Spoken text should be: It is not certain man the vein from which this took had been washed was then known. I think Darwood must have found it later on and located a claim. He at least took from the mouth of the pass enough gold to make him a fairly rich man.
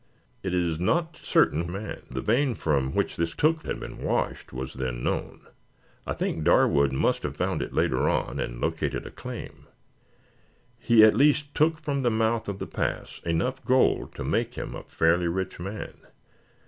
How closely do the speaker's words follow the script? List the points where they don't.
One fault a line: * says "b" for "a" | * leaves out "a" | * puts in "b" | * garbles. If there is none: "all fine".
all fine